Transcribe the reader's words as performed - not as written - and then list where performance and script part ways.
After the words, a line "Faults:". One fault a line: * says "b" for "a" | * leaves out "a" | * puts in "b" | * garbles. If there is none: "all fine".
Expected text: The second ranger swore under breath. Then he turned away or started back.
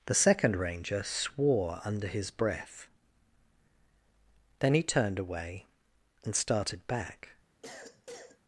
The second ranger swore under his breath. Then he turned away and started back.
Faults:
* puts in "his"
* says "and" for "or"